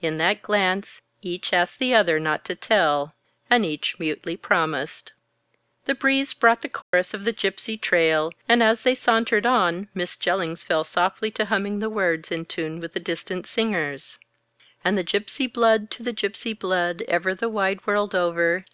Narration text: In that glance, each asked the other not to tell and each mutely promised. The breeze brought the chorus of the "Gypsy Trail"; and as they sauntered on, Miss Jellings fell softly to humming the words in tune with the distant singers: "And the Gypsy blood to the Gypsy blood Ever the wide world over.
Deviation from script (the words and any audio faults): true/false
true